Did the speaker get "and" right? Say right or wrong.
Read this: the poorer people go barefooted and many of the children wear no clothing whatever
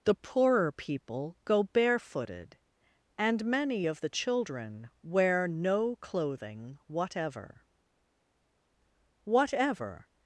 right